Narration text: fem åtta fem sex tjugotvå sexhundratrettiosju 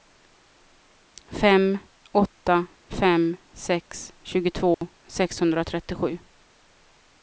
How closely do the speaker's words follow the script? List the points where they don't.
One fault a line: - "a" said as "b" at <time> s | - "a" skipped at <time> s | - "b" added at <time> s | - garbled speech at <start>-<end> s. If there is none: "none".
none